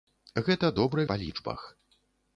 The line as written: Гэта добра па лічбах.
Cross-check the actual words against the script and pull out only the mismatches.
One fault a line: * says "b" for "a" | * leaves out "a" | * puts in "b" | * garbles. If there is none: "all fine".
all fine